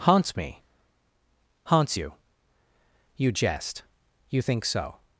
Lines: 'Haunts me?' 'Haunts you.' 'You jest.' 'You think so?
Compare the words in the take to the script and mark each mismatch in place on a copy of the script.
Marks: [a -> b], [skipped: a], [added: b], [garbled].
'Haunts me?' 'Haunts you.' 'You jest.' 'You think so?